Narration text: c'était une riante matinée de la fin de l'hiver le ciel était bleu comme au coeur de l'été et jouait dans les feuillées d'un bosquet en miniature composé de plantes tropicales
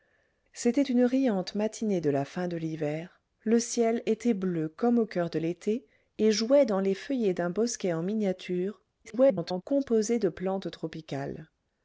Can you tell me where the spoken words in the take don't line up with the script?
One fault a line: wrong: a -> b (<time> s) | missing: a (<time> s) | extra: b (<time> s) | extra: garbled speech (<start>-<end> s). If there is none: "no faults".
extra: garbled speech (9.0-9.6 s)